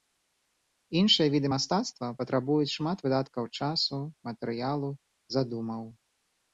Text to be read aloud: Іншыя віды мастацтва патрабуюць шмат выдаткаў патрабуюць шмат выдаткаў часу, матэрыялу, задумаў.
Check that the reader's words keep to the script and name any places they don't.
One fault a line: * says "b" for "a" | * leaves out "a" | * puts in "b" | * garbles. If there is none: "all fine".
* leaves out "патрабуюць шмат выдаткаў"